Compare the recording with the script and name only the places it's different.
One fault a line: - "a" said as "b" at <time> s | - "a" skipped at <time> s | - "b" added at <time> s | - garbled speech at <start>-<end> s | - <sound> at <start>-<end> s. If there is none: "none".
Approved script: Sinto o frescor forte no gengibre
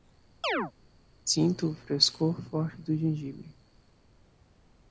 - chirp at 0.4-0.7 s
- "no" said as "do" at 2.8 s